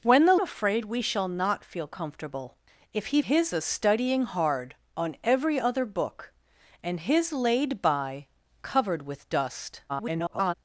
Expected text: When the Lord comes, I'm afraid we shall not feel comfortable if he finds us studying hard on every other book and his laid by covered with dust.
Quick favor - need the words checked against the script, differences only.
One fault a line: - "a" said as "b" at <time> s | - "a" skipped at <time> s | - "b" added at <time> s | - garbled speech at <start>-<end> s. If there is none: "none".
- "Lord comes I'm" skipped at 0.3 s
- "finds" said as "his" at 3.2 s
- garbled speech at 9.9-10.5 s